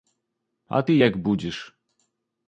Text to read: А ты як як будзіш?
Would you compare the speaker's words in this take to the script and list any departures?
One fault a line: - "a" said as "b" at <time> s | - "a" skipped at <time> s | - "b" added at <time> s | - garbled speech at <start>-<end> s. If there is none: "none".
- "як" skipped at 1.2 s